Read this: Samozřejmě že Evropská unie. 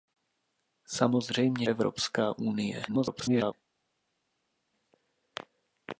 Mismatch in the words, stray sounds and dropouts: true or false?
true